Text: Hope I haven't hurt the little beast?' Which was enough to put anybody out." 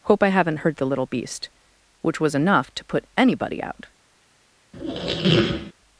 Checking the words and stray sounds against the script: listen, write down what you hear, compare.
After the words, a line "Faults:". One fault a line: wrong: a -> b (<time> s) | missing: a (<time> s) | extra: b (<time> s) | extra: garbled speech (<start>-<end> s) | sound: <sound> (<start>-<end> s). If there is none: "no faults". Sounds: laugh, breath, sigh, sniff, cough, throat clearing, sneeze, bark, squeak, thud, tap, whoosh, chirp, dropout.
Hope I haven't hurt the little beast?' Which was enough to put anybody out."
Faults:
sound: squeak (4.7-5.7 s)